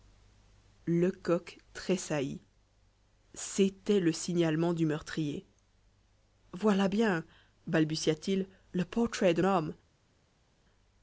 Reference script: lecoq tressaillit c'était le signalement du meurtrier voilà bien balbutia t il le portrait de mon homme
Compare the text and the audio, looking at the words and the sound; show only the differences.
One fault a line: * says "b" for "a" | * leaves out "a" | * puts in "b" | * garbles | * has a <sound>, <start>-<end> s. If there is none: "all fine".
* leaves out "mon"